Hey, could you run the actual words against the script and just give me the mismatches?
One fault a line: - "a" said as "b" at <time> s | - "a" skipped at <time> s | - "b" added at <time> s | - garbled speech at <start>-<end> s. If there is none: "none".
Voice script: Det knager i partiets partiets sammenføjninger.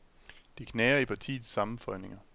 - "partiets" skipped at 1.5 s